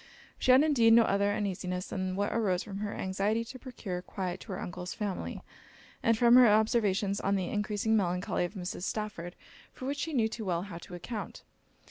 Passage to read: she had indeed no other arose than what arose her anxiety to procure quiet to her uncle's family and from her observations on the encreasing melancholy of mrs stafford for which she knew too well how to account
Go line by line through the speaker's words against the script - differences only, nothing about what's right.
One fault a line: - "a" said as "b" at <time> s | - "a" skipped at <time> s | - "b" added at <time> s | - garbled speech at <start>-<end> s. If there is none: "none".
- "arose" said as "uneasiness" at 1.3 s
- "from" added at 2.6 s